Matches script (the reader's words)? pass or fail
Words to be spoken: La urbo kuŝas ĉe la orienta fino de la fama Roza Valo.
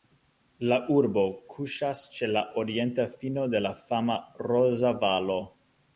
pass